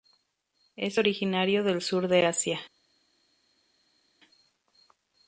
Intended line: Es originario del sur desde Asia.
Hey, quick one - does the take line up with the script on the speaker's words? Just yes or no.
no